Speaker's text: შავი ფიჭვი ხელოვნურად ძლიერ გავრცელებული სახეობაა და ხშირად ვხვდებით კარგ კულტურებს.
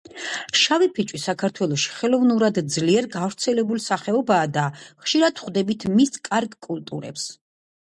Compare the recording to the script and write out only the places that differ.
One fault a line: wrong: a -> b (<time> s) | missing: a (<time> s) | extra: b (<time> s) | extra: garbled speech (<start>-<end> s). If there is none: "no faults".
extra: საქართველოში (1.2 s)
extra: მის (6.0 s)